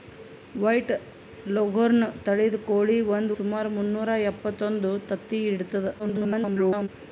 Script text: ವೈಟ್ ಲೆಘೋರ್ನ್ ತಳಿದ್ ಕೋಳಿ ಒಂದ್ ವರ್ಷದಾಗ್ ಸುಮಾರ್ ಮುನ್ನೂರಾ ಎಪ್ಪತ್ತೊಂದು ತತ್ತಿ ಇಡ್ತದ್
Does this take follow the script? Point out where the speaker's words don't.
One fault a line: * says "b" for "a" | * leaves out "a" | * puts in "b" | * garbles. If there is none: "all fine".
* leaves out "ವರ್ಷದಾಗ್"
* garbles